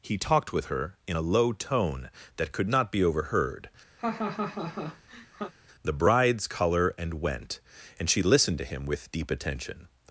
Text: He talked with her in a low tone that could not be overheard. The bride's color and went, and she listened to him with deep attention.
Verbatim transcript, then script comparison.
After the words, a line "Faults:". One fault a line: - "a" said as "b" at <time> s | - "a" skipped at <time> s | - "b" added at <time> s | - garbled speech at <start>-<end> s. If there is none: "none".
He talked with her in a low tone that could not be overheard. The bride's color and went, and she listened to him with deep attention.
Faults:
none